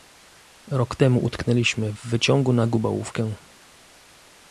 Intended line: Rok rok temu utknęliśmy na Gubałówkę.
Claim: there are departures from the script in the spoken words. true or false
true